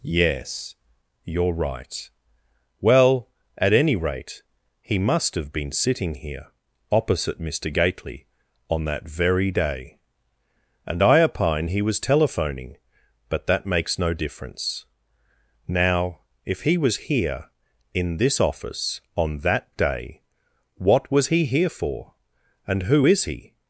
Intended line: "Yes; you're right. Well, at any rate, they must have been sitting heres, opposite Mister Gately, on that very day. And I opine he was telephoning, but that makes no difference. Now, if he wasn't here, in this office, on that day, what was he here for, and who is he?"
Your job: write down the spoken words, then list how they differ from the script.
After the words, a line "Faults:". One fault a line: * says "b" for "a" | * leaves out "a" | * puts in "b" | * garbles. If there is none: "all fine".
"Yes; you're right. Well, at any rate, he must have been sitting here, opposite Mister Gately, on that very day. And I opine he was telephoning, but that makes no difference. Now, if he was here, in this office, on that day, what was he here for, and who is he?"
Faults:
* says "he" for "they"
* says "here" for "heres"
* says "was" for "wasn't"